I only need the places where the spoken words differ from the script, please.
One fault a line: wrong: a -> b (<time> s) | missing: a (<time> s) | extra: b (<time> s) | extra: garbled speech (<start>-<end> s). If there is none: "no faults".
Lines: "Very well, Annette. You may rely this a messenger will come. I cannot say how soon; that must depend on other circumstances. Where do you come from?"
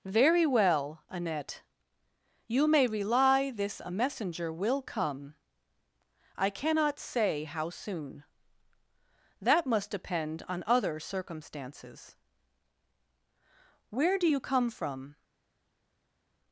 no faults